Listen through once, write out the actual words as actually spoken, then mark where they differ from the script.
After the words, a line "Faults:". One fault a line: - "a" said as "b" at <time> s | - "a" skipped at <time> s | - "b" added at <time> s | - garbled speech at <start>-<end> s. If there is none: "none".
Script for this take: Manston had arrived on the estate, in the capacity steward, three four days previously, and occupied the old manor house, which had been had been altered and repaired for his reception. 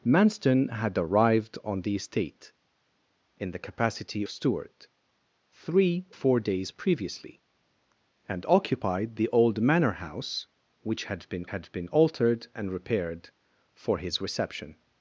Manston had arrived on the estate, in the capacity steward, three four days previously, and occupied the old manor house, which had been had been altered and repaired for his reception.
Faults:
none